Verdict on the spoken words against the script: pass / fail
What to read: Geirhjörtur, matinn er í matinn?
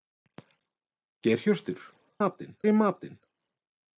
pass